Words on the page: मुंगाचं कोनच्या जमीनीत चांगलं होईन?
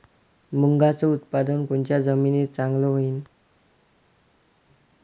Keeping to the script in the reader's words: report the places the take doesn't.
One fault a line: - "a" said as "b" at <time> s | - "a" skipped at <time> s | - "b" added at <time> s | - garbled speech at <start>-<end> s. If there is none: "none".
- "उत्पादन" added at 1.1 s